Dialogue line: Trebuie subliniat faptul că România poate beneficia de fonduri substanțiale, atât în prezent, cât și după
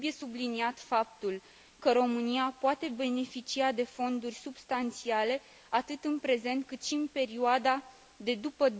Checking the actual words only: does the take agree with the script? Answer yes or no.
no